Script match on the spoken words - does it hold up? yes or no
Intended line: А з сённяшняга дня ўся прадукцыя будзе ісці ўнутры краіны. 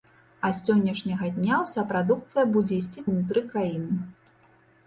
yes